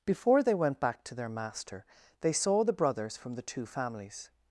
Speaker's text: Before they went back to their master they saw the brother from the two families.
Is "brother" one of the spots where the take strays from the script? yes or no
yes